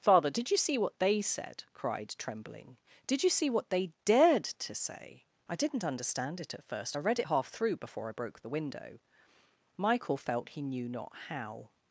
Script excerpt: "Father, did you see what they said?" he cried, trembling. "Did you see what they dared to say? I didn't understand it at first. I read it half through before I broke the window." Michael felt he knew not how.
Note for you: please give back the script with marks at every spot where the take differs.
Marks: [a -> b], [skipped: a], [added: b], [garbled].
"Father, did you see what they said?" [skipped: he] cried, trembling. "Did you see what they dared to say? I didn't understand it at first. I read it half through before I broke the window." Michael felt he knew not how.